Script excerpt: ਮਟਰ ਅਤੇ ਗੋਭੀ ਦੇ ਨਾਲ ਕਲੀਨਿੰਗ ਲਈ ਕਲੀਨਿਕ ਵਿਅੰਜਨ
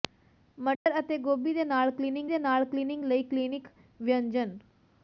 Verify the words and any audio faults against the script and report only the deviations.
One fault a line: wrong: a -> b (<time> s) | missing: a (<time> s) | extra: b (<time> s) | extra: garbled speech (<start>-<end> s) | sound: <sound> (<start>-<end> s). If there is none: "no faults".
sound: dropout (0.7-0.9 s)
extra: ਦੇ ਨਾਲ ਕਲੀਨਿੰਗ (2.3 s)